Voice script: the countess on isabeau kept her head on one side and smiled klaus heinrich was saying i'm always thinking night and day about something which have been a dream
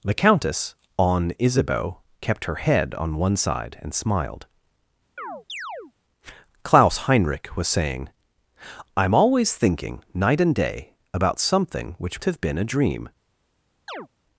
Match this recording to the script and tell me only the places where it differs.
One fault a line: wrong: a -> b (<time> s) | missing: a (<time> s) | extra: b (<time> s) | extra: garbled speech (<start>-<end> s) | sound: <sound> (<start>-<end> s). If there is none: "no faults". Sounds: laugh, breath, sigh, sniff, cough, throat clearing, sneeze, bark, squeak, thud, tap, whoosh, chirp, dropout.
sound: chirp (5.2-5.9 s)
sound: chirp (13.9-14.1 s)